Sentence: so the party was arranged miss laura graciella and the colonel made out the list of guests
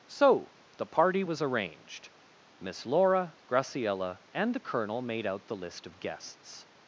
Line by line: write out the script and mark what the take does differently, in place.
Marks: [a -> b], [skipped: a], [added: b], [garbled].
so the party was arranged miss laura graciella and the colonel made out the list of guests